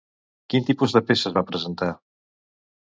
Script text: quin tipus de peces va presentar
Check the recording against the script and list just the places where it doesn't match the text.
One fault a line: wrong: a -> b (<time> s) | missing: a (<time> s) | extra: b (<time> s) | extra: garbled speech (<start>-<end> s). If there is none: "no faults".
no faults